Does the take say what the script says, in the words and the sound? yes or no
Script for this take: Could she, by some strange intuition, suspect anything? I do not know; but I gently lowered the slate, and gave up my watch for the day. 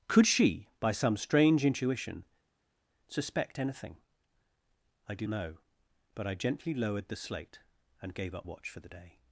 no